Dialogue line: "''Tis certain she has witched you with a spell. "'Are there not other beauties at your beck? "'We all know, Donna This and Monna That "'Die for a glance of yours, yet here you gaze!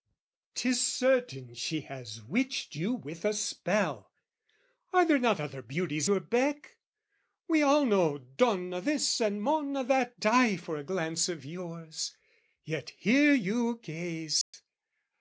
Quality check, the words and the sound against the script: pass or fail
fail